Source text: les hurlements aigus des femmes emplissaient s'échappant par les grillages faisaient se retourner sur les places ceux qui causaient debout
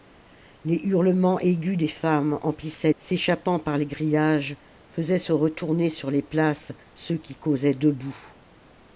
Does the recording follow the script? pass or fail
pass